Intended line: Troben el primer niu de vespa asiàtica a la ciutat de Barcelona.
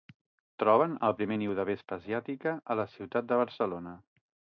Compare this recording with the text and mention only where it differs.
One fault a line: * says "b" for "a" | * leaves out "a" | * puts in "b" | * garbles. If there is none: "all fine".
all fine